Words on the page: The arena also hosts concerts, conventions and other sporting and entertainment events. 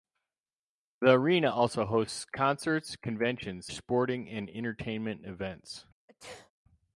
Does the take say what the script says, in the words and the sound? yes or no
no